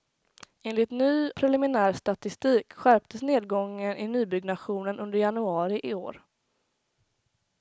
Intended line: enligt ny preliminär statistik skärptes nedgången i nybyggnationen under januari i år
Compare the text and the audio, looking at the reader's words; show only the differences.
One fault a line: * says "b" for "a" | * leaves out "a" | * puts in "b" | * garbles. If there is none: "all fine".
all fine